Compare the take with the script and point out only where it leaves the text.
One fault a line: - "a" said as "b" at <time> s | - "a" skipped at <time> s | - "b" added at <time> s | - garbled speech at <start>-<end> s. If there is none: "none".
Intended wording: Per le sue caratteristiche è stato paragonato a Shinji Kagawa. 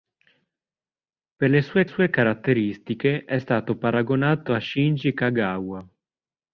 - "sue" added at 1.8 s